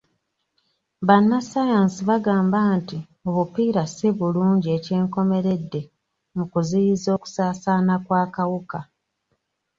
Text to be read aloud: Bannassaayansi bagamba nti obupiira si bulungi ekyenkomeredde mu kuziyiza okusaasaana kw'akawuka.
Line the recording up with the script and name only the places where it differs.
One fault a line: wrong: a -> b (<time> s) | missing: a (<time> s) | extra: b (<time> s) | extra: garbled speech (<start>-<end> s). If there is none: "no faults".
no faults